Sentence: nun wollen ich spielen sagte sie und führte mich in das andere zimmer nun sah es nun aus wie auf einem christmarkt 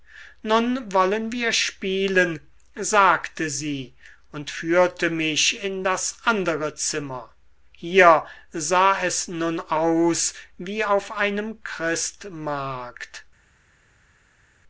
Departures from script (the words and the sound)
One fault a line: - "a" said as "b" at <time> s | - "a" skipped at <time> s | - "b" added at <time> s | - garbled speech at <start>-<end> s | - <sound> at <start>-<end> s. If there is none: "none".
- "ich" said as "wir" at 1.3 s
- "nun" said as "hier" at 7.7 s